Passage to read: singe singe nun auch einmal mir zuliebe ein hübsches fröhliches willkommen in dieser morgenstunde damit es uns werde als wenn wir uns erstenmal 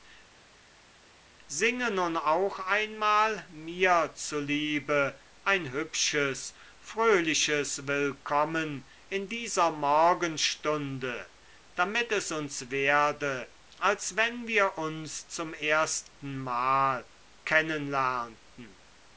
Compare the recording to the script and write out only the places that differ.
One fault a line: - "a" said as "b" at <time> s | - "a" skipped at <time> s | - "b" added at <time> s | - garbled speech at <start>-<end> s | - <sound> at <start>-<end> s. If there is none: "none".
- "singe" skipped at 1.9 s
- "zum" added at 15.3 s